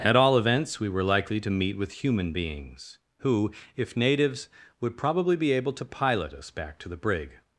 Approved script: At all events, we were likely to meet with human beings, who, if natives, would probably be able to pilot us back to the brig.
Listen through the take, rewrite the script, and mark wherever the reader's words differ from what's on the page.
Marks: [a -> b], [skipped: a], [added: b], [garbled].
At all events, we were likely to meet with human beings, who, if natives, would probably be able to pilot us back to the brig.